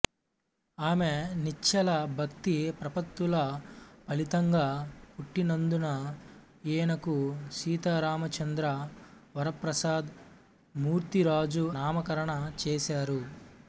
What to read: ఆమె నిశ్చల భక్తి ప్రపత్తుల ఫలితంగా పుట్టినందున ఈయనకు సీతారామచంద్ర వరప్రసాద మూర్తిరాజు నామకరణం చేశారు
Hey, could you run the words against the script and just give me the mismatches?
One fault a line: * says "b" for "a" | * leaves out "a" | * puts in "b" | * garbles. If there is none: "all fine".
all fine